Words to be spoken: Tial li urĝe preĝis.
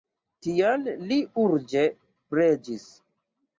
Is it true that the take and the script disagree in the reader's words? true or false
false